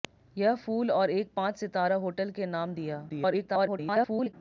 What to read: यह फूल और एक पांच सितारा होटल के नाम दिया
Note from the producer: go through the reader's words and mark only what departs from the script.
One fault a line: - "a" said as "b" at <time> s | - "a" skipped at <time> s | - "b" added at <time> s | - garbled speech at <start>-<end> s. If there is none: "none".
- garbled speech at 3.1-4.3 s